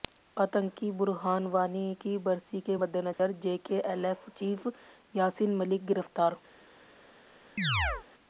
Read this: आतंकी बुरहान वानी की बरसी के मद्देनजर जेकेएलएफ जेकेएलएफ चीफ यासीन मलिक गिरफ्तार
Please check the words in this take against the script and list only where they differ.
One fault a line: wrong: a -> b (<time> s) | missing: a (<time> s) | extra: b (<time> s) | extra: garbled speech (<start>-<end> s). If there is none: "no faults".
missing: जेकेएलएफ (4.3 s)